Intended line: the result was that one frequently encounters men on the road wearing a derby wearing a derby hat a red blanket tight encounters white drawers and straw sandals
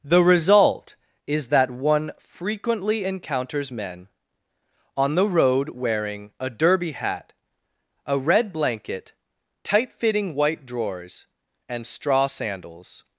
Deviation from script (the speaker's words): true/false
true